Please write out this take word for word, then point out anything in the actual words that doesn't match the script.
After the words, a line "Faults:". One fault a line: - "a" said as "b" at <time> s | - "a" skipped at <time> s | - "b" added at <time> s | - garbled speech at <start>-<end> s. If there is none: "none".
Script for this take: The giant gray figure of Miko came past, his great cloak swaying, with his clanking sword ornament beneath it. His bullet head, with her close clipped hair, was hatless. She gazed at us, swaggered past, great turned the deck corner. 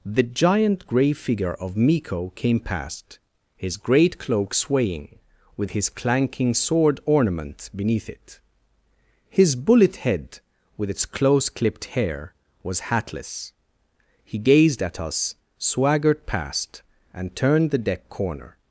The giant gray figure of Miko came past, his great cloak swaying, with his clanking sword ornament beneath it. His bullet head, with its close clipped hair, was hatless. He gazed at us, swaggered past, and turned the deck corner.
Faults:
- "her" said as "its" at 10.9 s
- "She" said as "He" at 14.2 s
- "great" said as "and" at 17.1 s